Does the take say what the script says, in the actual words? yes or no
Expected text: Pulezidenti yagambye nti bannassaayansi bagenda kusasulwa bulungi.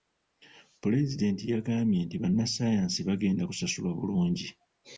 yes